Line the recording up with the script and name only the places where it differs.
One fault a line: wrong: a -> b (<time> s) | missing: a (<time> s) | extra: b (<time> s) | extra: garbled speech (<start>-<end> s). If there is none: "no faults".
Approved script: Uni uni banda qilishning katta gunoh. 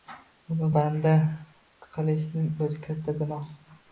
missing: uni (0.7 s)
extra: o'zi (2.7 s)